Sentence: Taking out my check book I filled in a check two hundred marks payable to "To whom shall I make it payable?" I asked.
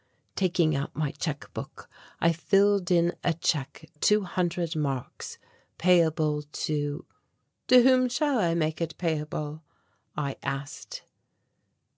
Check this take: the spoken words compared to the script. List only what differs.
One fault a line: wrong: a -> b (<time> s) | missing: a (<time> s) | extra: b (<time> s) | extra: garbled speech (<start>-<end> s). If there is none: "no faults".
no faults